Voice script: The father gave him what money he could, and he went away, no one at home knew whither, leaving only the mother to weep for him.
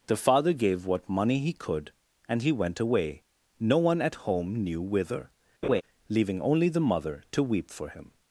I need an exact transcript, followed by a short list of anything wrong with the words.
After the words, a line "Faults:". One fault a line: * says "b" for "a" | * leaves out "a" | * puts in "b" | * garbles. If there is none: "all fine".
The father gave what money he could, and he went away, no one at home knew whither, leaving only the mother to weep for him.
Faults:
* leaves out "him"